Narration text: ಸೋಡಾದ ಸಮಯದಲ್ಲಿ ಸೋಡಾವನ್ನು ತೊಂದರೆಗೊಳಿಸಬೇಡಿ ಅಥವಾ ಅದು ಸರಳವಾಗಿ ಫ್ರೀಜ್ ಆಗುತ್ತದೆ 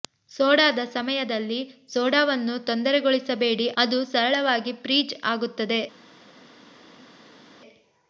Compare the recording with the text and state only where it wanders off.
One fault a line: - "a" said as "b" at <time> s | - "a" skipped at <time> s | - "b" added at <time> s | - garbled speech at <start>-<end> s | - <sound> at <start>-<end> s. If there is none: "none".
- "ಅಥವಾ" skipped at 3.7 s